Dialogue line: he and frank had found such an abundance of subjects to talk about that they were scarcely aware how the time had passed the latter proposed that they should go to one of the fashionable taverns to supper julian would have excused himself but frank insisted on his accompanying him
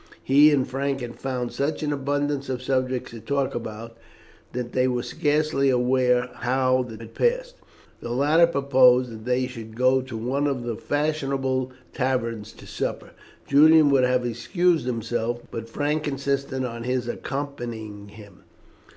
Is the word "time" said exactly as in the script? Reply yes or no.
no